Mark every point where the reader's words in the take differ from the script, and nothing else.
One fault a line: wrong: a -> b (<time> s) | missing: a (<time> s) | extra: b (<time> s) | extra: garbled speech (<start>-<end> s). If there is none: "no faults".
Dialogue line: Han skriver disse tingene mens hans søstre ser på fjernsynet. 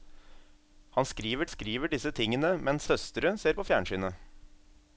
extra: skriver (1.5 s)
missing: hans (2.9 s)